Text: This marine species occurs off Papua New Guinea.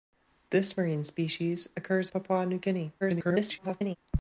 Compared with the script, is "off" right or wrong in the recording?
wrong